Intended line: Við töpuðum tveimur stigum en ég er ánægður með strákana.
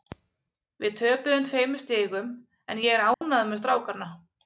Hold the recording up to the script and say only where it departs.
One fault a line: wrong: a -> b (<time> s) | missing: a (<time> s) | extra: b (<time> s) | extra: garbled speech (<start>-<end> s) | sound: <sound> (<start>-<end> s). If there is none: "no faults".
sound: dropout (3.1-3.2 s)